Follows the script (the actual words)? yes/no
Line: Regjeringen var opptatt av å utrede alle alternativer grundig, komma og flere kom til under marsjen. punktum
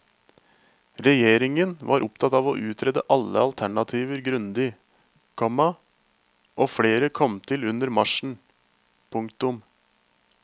yes